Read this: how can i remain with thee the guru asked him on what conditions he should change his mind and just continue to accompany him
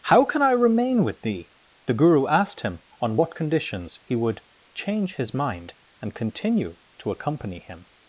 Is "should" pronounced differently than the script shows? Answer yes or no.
yes